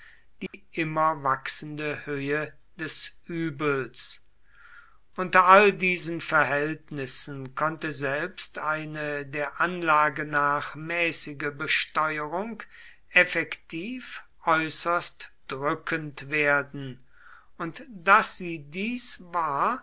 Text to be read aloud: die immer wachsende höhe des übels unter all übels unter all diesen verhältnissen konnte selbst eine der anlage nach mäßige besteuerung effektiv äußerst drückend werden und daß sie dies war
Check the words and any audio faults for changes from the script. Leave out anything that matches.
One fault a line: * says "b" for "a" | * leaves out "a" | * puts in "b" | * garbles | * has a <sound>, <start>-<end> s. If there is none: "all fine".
* has a dropout, 0.5-0.5 s
* leaves out "übels unter all"